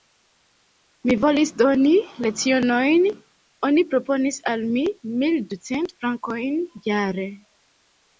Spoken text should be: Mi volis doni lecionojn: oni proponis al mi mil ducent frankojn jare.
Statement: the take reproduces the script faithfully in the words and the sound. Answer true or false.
true